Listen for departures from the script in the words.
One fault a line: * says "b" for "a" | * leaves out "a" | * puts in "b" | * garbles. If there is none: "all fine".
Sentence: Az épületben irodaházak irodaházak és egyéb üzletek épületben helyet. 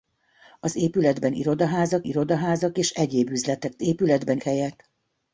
all fine